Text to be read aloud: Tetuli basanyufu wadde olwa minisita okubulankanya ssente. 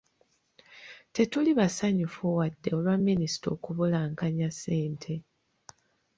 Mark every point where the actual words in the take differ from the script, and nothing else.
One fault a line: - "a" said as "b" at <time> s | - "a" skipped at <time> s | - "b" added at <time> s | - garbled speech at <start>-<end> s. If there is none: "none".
none